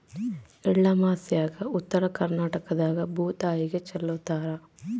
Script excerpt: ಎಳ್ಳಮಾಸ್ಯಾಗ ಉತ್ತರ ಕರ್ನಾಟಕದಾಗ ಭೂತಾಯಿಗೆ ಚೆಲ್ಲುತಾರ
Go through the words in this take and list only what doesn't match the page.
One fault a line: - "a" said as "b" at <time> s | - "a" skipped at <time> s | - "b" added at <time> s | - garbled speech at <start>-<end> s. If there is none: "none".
none